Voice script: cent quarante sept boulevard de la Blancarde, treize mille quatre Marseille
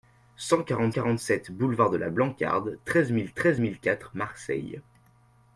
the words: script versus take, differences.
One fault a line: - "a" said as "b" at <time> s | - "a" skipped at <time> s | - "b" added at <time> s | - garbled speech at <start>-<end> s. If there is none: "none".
- "quarante" added at 0.9 s
- "treize mille" added at 3.3 s